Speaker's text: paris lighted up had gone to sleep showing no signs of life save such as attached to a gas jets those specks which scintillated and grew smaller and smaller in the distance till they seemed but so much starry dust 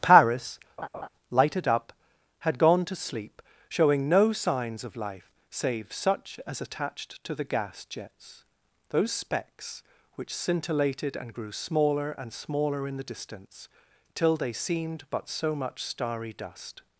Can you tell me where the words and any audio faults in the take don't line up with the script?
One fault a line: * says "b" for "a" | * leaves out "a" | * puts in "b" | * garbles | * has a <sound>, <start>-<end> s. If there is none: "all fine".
* has a laugh, 0.8-1.1 s
* says "the" for "a"